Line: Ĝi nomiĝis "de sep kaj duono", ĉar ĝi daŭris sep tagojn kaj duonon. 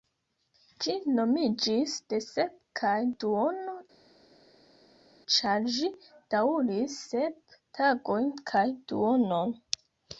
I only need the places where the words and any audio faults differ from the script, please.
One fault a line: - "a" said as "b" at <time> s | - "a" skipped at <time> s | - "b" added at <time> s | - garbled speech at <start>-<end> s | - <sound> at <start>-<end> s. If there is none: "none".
none